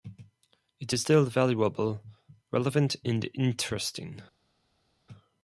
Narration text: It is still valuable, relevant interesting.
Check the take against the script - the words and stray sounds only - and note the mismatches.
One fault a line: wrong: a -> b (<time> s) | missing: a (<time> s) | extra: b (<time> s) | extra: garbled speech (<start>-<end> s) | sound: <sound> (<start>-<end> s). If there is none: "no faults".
extra: and (3.1 s)